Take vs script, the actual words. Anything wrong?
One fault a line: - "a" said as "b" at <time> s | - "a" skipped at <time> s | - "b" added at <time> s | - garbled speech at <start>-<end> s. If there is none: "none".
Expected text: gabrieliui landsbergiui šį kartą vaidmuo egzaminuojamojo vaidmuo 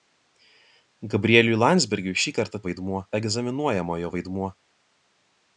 none